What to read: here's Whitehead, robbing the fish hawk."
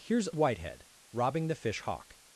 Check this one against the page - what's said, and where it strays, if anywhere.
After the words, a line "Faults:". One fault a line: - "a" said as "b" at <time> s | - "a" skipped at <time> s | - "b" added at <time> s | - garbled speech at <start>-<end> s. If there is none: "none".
here's Whitehead, robbing the fish hawk."
Faults:
none